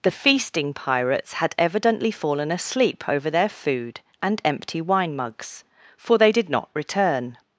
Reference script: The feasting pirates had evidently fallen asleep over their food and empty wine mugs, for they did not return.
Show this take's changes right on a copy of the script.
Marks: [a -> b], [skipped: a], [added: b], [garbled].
The feasting pirates had evidently fallen asleep over their food and empty wine mugs, for they did not return.